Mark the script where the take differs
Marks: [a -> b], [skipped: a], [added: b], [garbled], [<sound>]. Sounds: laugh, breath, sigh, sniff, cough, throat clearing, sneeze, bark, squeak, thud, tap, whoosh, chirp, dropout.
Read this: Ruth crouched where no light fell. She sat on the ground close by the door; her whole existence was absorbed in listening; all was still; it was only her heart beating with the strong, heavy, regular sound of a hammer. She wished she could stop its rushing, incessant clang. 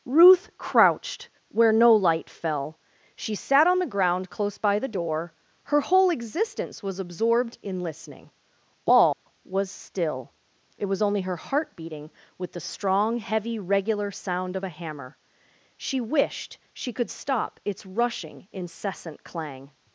Ruth crouched where no light fell. She sat on the ground close by the door; her whole existence was absorbed in listening; all [dropout] was still; it was only her heart beating with the strong, heavy, regular sound of a hammer. She wished she could stop its rushing, incessant clang.